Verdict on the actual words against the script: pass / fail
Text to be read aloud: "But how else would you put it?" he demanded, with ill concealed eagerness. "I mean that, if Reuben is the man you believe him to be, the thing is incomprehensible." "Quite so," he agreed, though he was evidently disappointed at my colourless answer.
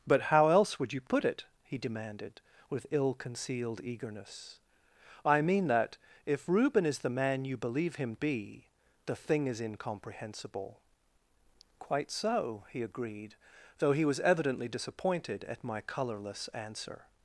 fail